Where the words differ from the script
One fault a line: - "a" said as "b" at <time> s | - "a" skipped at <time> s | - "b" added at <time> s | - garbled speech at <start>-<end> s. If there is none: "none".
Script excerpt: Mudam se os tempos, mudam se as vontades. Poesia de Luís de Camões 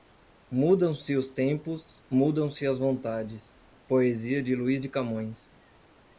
none